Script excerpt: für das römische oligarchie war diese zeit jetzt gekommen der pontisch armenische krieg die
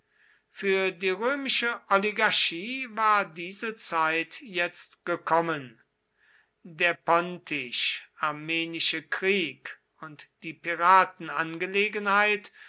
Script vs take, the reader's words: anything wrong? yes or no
yes